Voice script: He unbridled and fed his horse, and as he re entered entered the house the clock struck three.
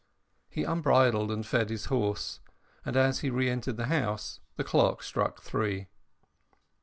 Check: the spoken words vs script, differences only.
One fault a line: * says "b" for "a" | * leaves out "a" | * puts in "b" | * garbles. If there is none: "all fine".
* leaves out "entered"